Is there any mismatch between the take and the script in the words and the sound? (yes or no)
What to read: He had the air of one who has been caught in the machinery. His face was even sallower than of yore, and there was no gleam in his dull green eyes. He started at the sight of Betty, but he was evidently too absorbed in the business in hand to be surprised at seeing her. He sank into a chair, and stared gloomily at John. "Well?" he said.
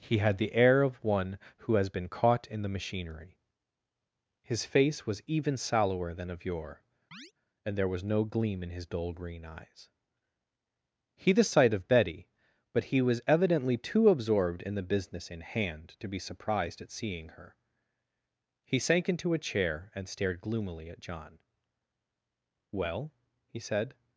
yes